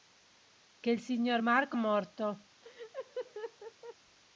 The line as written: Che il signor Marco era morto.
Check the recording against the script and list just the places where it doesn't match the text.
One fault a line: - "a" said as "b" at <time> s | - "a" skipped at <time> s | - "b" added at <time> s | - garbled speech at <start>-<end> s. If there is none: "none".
- "era" skipped at 1.8 s